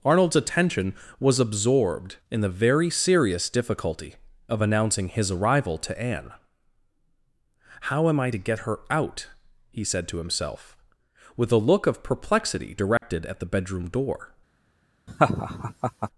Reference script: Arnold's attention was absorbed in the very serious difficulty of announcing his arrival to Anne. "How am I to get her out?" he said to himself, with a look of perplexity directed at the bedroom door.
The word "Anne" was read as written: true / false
true